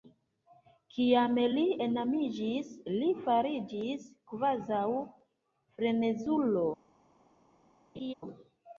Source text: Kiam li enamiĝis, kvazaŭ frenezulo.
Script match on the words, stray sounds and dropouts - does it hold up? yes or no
no